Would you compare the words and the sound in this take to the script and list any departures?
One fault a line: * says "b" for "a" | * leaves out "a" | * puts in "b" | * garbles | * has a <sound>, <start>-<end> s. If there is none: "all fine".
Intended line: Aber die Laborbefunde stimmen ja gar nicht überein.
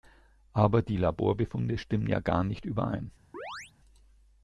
* has a chirp, 3.3-3.7 s